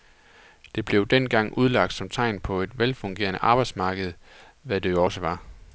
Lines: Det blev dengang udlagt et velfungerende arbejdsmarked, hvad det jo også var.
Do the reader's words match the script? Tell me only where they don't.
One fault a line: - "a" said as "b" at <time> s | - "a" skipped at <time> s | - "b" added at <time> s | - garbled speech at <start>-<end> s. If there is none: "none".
- "som tegn på" added at 1.9 s